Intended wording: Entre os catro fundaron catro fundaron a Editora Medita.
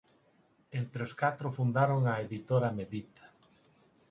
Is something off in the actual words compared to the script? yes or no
yes